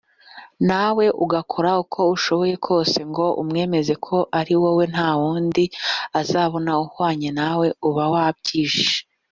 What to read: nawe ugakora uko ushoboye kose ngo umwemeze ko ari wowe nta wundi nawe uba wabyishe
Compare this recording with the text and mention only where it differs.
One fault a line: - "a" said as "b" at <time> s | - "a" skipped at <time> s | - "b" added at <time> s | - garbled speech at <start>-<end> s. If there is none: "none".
- "azabona uhwanye" added at 6.2 s